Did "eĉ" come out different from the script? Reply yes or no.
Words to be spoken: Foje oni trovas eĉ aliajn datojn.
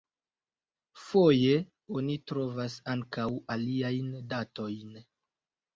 yes